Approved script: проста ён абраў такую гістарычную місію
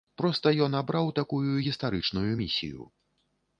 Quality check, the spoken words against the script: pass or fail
pass